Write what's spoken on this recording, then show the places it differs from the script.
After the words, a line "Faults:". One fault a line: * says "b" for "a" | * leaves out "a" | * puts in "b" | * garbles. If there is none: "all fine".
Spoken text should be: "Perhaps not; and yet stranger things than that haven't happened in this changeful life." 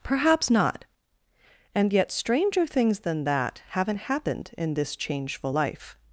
"Perhaps not; and yet stranger things than that haven't happened in this changeful life."
Faults:
all fine